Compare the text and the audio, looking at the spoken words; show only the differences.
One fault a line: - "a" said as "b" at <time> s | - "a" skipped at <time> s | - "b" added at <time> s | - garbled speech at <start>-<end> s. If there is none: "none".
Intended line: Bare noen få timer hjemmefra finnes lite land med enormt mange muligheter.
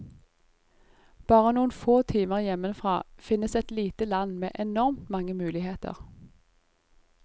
- "et" added at 3.6 s